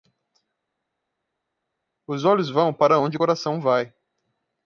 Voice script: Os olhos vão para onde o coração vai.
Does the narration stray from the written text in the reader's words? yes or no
no